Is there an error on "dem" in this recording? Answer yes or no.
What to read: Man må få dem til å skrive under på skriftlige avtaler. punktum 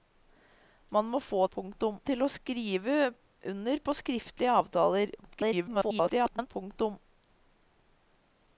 yes